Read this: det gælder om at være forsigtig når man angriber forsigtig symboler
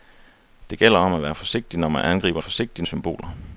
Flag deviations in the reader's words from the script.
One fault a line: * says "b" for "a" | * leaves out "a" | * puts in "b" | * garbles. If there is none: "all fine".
all fine